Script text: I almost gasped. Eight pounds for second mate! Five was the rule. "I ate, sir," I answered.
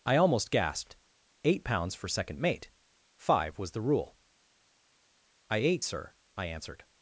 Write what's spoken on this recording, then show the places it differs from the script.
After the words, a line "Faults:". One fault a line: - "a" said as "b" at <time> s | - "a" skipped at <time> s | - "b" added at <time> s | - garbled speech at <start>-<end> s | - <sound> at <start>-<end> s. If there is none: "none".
I almost gasped. Eight pounds for second mate! Five was the rule. "I ate, sir," I answered.
Faults:
none